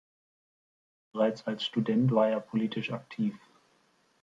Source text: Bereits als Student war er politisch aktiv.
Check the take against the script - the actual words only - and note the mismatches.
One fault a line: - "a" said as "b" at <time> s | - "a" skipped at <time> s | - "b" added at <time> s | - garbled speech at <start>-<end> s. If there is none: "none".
none